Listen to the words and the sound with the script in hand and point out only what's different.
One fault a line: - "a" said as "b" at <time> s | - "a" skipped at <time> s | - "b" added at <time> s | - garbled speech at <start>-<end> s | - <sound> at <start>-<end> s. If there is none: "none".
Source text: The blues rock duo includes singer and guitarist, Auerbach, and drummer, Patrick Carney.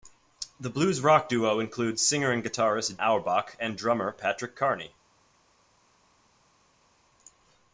none